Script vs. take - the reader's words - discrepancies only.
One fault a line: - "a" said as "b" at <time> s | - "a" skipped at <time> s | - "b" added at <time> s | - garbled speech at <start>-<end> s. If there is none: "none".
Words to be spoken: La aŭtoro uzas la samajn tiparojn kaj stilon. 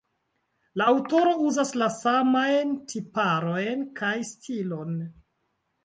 none